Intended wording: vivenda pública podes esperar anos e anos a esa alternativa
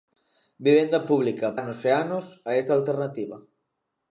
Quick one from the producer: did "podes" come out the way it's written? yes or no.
no